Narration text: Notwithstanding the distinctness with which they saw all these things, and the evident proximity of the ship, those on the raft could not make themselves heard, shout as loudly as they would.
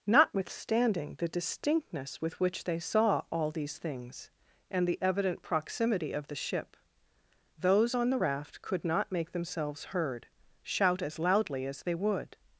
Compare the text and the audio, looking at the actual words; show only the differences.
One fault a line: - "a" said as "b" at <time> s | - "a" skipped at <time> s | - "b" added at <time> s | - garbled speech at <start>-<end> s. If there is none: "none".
none